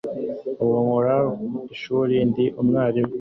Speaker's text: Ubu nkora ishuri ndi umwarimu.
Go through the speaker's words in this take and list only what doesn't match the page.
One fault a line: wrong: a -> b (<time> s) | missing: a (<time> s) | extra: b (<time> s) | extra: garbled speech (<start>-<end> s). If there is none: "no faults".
no faults